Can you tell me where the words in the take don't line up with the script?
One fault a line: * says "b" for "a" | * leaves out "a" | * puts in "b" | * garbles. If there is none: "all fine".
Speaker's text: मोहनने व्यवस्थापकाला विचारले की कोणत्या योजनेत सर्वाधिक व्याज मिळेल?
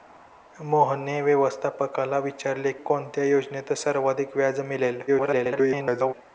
* leaves out "की"
* garbles